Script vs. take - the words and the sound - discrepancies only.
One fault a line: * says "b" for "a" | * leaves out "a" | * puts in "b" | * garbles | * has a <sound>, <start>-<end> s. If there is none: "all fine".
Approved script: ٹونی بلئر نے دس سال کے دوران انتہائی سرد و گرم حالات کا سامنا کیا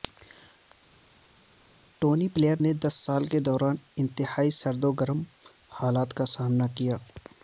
all fine